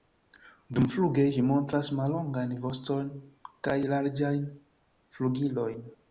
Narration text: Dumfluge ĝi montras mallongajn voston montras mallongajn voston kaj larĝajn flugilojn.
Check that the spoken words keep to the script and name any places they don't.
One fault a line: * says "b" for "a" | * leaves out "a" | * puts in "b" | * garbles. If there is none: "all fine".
* leaves out "montras mallongajn voston"